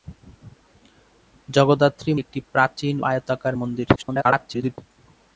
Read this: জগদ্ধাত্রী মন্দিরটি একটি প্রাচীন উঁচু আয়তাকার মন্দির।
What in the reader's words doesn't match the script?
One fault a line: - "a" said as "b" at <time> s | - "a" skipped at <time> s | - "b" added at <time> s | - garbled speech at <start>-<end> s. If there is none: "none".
- "মন্দিরটি" skipped at 2.1 s
- "উঁচু" skipped at 2.9 s
- garbled speech at 4.0-4.8 s